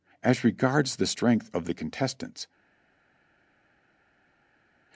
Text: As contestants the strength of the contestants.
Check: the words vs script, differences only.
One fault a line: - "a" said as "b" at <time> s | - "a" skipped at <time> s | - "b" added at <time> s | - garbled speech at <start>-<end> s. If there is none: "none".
- "contestants" said as "regards" at 0.4 s